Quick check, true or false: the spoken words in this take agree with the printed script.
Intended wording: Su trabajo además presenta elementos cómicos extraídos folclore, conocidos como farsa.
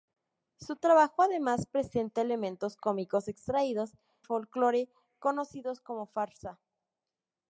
true